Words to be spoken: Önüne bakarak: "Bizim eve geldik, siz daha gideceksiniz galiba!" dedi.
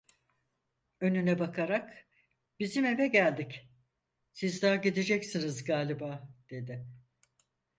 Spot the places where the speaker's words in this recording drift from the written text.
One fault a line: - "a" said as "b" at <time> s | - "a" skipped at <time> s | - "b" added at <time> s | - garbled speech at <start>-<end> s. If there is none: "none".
none